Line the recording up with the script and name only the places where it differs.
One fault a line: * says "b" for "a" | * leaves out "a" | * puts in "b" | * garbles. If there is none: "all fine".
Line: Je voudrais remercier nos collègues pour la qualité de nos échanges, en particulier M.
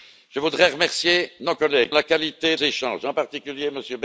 * leaves out "pour"
* leaves out "de nos"